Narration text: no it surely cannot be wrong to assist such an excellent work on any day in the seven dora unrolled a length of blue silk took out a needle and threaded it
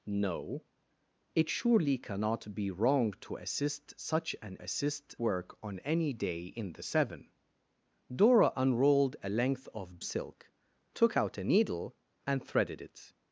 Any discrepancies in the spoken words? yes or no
yes